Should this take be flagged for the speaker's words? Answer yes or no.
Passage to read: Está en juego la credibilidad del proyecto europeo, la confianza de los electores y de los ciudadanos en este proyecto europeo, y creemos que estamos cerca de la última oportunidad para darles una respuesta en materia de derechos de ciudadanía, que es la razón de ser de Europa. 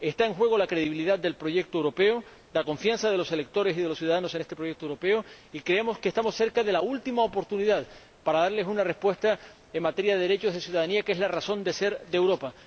no